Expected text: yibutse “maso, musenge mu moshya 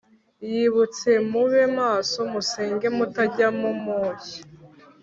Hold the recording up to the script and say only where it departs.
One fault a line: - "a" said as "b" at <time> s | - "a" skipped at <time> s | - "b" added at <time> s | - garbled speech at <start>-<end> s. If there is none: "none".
- "mube" added at 1.3 s
- "mutajya" added at 3.0 s